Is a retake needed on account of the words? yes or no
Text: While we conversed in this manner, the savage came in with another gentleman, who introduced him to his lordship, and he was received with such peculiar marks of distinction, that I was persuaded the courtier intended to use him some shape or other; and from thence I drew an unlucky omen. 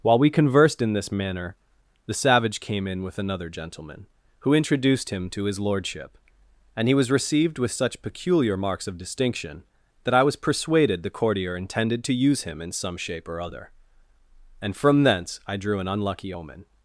yes